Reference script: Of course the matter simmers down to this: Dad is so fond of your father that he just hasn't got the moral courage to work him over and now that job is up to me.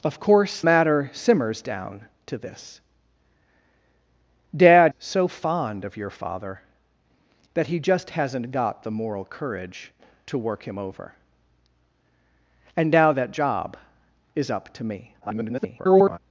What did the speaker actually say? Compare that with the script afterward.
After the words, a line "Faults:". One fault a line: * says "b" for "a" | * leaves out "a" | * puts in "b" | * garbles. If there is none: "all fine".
Of course matter simmers down to this: Dad so fond of your father that he just hasn't got the moral courage to work him over and now that job is up to me. [garbled]
Faults:
* leaves out "the"
* leaves out "is"
* garbles